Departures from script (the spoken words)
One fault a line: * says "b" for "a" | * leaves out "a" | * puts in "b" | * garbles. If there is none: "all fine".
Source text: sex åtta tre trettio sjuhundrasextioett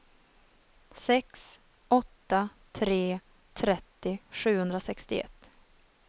all fine